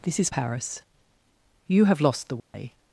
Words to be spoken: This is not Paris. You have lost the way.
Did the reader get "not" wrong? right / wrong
wrong